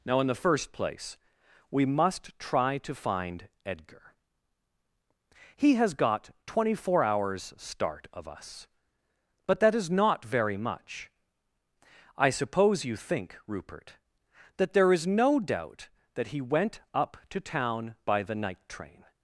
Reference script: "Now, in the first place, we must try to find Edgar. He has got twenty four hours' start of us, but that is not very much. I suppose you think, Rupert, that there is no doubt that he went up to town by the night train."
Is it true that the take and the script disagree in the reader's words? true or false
false